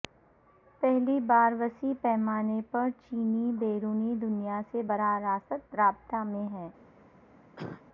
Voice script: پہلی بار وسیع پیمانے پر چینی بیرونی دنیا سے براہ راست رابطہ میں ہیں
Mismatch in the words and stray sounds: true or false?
true